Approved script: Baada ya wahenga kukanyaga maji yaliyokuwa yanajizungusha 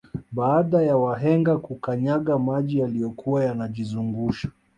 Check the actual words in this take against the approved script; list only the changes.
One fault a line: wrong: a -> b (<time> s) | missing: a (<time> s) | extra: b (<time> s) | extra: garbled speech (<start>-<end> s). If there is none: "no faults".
no faults